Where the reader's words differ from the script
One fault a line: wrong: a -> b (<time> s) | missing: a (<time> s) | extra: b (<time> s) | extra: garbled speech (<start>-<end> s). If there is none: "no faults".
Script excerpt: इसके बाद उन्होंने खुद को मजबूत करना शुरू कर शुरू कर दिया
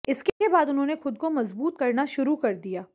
missing: शुरू कर (2.5 s)